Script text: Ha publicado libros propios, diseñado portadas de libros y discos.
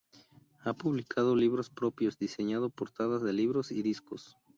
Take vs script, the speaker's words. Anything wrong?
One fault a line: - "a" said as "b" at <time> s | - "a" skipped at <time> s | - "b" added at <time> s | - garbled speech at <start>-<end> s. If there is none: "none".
none